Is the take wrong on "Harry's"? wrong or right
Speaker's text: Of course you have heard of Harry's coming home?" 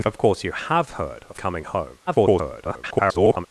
wrong